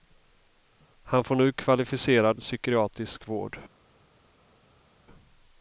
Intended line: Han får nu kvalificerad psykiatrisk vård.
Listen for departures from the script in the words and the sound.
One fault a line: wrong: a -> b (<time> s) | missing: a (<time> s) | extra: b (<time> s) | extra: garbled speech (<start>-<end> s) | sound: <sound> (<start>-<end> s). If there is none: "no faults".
no faults